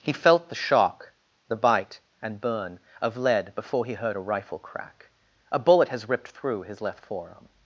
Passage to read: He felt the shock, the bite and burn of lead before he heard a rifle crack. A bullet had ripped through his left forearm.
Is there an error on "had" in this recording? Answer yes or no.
yes